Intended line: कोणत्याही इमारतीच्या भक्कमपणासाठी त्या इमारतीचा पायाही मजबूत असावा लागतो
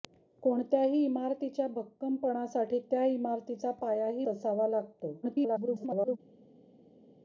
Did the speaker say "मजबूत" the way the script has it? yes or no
no